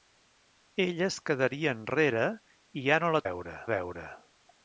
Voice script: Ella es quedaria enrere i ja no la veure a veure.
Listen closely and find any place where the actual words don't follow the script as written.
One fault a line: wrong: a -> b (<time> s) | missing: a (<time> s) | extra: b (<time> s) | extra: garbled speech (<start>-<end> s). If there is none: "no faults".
no faults